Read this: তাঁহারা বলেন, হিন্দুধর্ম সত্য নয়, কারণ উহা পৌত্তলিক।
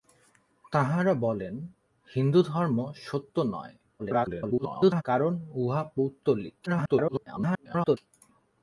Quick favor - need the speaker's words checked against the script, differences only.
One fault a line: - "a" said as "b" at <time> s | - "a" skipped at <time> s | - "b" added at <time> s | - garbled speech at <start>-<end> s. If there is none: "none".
- garbled speech at 4.0-5.0 s
- garbled speech at 6.7-8.0 s